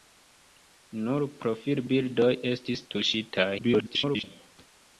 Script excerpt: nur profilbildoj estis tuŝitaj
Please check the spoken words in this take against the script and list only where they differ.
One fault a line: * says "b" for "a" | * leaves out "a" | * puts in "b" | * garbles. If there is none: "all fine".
* garbles